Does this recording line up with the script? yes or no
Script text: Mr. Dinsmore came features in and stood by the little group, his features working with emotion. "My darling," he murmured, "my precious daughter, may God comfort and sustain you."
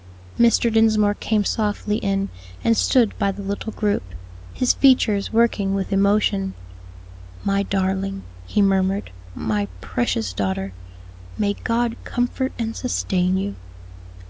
no